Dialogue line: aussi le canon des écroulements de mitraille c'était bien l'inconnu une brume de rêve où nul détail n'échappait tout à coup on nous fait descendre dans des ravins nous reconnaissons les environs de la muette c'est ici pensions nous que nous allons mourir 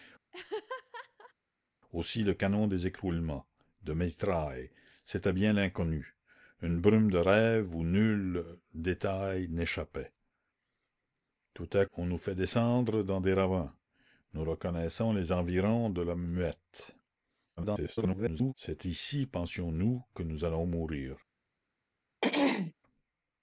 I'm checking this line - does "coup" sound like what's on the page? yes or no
no